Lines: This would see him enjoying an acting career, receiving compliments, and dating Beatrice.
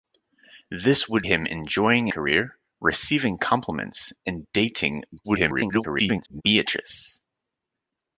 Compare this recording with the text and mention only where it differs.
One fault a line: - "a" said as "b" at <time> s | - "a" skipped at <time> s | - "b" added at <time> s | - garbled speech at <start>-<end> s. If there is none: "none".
- "see" skipped at 1.3 s
- "an acting" skipped at 2.1 s
- garbled speech at 5.2-6.4 s